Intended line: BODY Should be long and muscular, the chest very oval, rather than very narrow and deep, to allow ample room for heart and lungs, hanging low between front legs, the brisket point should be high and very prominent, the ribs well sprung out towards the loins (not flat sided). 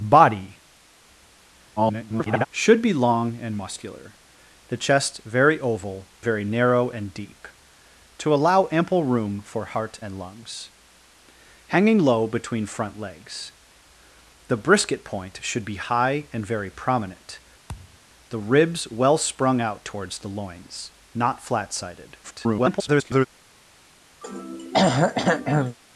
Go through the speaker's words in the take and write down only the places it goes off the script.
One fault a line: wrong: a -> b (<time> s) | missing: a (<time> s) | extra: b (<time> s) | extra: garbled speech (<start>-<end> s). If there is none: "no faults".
extra: garbled speech (1.8-2.5 s)
missing: rather than (6.1 s)
extra: garbled speech (22.2-23.3 s)